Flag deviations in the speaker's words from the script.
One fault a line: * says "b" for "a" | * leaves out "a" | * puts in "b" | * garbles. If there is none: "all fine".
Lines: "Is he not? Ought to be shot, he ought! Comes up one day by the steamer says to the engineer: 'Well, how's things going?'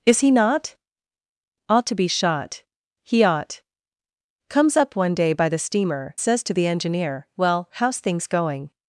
all fine